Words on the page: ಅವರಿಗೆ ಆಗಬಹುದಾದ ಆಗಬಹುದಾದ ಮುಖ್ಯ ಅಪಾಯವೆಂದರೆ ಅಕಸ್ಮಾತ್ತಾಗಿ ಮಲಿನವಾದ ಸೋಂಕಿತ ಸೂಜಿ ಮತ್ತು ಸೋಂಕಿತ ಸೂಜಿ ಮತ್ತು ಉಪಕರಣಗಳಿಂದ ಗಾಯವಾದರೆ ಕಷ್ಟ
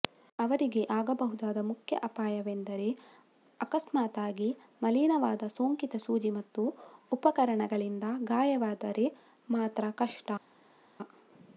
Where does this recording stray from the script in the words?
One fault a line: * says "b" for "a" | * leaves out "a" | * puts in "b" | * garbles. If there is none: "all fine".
* leaves out "ಆಗಬಹುದಾದ"
* leaves out "ಸೋಂಕಿತ ಸೂಜಿ ಮತ್ತು"
* puts in "ಮಾತ್ರ"